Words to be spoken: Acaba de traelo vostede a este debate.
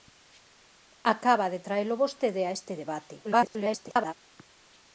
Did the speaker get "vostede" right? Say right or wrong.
right